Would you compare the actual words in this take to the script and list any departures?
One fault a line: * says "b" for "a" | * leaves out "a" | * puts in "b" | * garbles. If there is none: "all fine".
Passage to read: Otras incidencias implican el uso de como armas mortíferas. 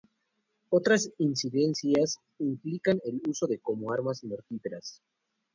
all fine